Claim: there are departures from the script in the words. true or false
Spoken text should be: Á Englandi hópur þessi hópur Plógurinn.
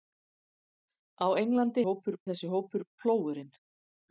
false